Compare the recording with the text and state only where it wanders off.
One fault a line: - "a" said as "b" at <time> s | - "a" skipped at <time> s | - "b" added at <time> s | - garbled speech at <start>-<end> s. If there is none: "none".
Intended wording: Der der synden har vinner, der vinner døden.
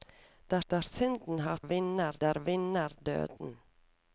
none